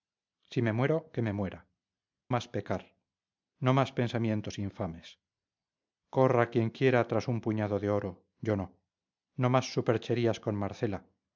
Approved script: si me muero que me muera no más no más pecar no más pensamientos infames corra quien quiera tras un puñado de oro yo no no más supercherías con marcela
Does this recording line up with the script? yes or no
no